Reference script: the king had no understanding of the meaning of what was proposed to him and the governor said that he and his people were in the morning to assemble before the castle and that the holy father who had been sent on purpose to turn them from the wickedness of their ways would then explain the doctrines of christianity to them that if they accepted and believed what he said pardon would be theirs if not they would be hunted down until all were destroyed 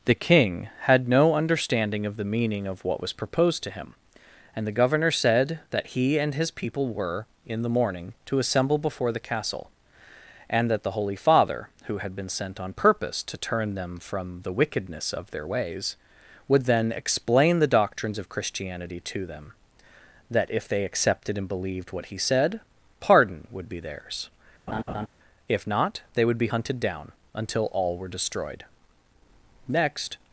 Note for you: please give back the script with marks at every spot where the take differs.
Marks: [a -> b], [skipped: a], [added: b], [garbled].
the king had no understanding of the meaning of what was proposed to him and the governor said that he and his people were in the morning to assemble before the castle and that the holy father who had been sent on purpose to turn them from the wickedness of their ways would then explain the doctrines of christianity to them that if they accepted and believed what he said pardon would be theirs if not they would be hunted down until all were destroyed [added: next]